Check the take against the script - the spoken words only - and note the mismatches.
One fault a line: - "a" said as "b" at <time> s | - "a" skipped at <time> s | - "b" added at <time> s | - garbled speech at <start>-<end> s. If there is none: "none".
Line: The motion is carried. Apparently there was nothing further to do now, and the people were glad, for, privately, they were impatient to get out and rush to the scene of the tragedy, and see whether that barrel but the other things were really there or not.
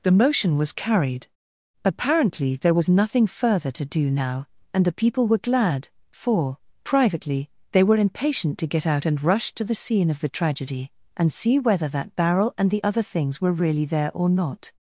- "is" said as "was" at 0.6 s
- "but" said as "and" at 12.6 s